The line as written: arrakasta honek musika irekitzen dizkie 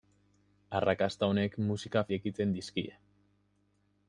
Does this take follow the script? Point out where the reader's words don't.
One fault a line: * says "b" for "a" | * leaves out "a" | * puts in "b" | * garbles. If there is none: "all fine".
all fine